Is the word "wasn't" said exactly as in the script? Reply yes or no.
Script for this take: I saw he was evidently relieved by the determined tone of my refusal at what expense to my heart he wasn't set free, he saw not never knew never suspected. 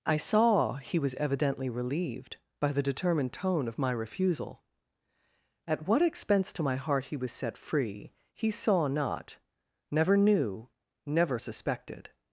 no